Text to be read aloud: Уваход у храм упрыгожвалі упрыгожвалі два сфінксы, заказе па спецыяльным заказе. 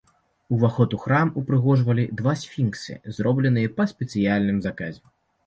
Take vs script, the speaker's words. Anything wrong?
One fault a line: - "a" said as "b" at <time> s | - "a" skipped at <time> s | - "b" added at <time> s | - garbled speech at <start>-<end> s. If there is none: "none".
- "упрыгожвалі" skipped at 2.1 s
- "заказе" said as "зробленыя" at 3.2 s